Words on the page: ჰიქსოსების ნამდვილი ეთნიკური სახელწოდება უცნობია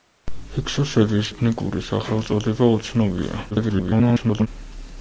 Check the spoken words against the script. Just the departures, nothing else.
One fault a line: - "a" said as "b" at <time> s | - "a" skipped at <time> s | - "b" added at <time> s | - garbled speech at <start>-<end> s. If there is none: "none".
- "ნამდვილი" skipped at 1.3 s
- garbled speech at 3.5-4.5 s